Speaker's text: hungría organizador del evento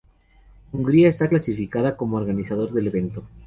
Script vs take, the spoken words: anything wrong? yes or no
yes